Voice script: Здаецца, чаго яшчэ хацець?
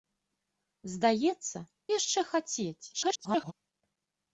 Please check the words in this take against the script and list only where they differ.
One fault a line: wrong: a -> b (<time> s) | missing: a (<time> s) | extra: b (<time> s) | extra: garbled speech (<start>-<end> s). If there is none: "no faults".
missing: чаго (1.6 s)
extra: garbled speech (2.9-3.5 s)